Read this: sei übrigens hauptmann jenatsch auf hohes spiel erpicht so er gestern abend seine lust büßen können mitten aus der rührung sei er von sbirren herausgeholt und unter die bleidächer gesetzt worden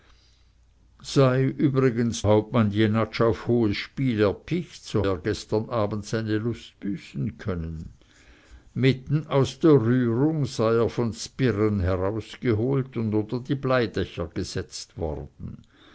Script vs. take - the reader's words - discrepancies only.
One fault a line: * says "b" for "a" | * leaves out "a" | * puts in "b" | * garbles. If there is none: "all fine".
all fine